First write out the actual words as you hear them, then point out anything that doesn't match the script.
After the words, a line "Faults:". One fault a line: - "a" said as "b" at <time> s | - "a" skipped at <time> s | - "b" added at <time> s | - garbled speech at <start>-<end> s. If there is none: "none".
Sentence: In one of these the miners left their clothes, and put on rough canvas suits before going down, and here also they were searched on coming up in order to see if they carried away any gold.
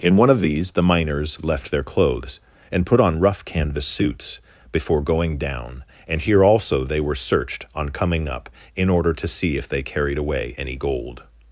In one of these the miners left their clothes, and put on rough canvas suits before going down, and here also they were searched on coming up in order to see if they carried away any gold.
Faults:
none